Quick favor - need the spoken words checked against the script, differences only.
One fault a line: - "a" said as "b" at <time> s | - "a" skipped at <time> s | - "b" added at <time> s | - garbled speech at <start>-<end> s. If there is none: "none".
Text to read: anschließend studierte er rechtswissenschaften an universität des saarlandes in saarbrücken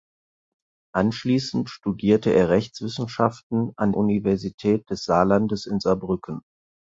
none